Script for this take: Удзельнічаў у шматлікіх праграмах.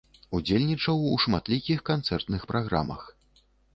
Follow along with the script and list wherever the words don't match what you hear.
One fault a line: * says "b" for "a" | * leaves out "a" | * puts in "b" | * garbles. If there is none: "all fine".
* puts in "канцэртных"